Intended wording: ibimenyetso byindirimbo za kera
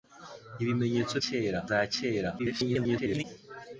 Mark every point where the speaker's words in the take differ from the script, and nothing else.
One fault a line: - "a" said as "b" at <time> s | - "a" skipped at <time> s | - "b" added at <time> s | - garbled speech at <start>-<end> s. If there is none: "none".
- "byindirimbo" said as "kera" at 1.2 s
- garbled speech at 2.4-3.2 s